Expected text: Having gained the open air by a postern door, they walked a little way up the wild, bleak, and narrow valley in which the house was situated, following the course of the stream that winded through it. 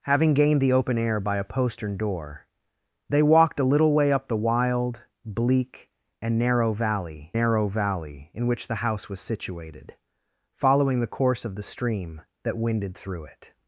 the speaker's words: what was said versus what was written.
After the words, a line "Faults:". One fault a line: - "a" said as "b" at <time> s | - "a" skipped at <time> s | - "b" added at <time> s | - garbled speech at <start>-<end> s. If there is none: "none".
Having gained the open air by a postern door, they walked a little way up the wild, bleak, and narrow valley narrow valley in which the house was situated, following the course of the stream that winded through it.
Faults:
- "narrow valley" added at 7.3 s